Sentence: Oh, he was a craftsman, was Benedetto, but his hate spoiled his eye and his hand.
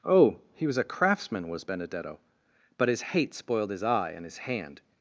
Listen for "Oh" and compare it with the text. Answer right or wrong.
right